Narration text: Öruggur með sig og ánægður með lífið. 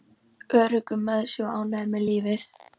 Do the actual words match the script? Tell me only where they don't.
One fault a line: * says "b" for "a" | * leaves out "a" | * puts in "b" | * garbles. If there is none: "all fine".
all fine